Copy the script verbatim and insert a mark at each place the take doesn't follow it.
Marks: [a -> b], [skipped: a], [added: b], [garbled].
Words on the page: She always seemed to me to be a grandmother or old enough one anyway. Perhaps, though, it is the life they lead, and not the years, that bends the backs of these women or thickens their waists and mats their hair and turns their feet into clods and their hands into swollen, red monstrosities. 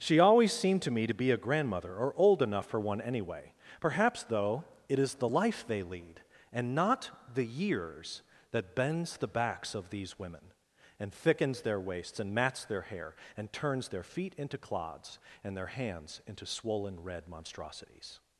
She always seemed to me to be a grandmother or old enough [added: for] one anyway. Perhaps, though, it is the life they lead, and not the years, that bends the backs of these women [or -> and] thickens their waists and mats their hair and turns their feet into clods and their hands into swollen, red monstrosities.